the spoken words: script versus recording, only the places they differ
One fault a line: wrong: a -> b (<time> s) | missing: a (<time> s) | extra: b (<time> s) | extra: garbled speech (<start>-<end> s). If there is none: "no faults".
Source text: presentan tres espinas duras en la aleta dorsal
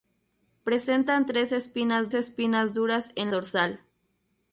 extra: espinas (2.1 s)
missing: la aleta (3.3 s)